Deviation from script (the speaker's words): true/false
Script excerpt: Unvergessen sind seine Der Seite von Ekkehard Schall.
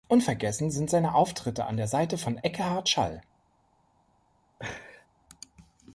true